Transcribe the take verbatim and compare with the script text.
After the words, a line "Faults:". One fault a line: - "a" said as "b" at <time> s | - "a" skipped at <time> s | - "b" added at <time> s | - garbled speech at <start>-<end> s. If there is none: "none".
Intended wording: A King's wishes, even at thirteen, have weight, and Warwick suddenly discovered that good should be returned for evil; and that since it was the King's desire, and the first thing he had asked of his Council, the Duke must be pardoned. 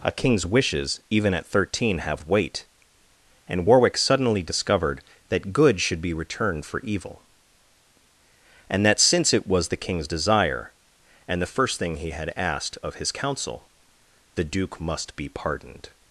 A King's wishes, even at thirteen, have weight, and Warwick suddenly discovered that good should be returned for evil; and that since it was the King's desire, and the first thing he had asked of his Council, the Duke must be pardoned.
Faults:
none